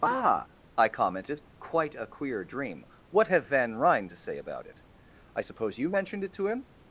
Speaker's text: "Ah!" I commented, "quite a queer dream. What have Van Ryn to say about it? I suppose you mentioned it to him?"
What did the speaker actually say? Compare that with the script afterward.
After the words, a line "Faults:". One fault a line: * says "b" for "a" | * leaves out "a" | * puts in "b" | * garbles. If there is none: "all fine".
"Ah!" I commented, "quite a queer dream. What have Van Ryn to say about it? I suppose you mentioned it to him?"
Faults:
all fine